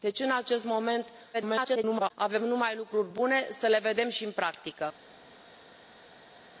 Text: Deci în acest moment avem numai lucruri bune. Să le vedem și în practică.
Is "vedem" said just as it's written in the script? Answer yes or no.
yes